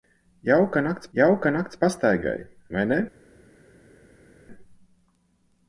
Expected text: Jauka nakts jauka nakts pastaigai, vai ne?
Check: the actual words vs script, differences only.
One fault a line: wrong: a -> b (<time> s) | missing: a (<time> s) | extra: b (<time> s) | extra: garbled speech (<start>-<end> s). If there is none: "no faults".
no faults